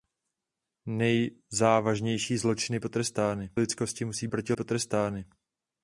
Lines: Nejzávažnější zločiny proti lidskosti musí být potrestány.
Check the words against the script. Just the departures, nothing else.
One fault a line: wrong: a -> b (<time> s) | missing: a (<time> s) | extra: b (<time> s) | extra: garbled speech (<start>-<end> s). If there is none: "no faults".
wrong: proti -> potrestány (2.8 s)
wrong: být -> proti (4.3 s)